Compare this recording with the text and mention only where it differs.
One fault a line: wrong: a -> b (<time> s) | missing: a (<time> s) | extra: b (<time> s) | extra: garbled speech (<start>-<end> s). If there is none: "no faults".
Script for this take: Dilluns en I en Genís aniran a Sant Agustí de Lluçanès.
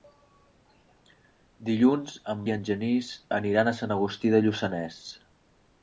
no faults